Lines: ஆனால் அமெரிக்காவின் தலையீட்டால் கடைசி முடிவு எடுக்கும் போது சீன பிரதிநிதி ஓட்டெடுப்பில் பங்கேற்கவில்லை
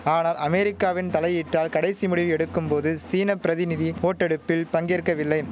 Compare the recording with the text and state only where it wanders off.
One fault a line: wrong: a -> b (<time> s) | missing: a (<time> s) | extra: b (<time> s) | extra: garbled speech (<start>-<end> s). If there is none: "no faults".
no faults